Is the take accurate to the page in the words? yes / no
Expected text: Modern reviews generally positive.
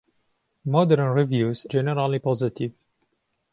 yes